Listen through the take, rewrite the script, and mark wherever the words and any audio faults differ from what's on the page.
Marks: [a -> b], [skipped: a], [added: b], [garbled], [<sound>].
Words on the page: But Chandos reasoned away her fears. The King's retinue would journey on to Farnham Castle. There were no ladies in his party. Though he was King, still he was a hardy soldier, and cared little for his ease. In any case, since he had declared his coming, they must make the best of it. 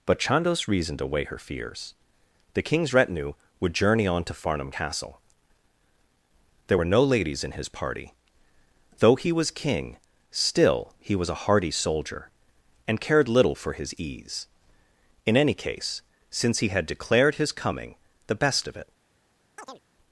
But Chandos reasoned away her fears. The King's retinue would journey on to Farnham Castle. There were no ladies in his party. Though he was King, still he was a hardy soldier, and cared little for his ease. In any case, since he had declared his coming, [skipped: they must make] the best of it. [chirp]